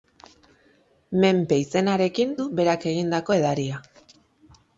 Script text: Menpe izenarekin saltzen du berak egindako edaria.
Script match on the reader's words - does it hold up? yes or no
no